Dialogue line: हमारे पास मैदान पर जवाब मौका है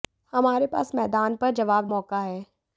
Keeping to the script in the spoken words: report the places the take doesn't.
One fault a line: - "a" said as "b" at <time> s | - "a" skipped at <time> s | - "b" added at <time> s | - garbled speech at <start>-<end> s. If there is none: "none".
none